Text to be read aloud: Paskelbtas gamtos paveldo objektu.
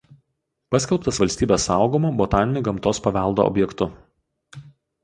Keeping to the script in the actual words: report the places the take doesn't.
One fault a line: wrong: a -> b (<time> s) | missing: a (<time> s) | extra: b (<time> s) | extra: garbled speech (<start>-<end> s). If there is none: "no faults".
extra: valstybės saugomu botaniniu (1.2 s)